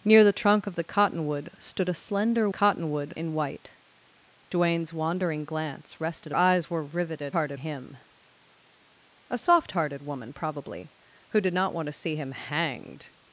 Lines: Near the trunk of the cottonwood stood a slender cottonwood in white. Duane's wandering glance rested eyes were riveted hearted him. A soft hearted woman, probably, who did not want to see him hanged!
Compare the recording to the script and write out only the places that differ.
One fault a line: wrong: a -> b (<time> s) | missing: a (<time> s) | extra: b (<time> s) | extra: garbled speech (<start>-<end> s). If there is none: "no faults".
no faults